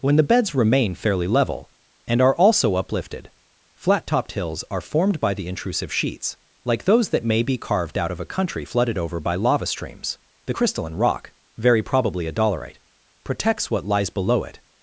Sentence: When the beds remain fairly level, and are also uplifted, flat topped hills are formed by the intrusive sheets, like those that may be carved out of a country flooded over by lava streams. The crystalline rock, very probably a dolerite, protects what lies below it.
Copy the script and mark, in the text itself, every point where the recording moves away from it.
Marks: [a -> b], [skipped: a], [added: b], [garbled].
When the beds remain fairly level, and are also uplifted, flat topped hills are formed by the intrusive sheets, like those that may be carved out of a country flooded over by lava streams. The crystalline rock, very probably a dolerite, protects what lies below it.